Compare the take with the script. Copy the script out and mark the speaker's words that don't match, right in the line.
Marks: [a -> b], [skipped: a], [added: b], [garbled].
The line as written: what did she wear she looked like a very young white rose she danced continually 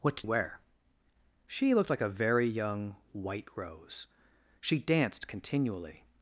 what did [skipped: she] wear she looked like a very young white rose she danced continually